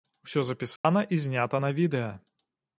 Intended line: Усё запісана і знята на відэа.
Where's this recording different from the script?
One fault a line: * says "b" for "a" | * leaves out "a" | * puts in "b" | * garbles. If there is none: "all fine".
all fine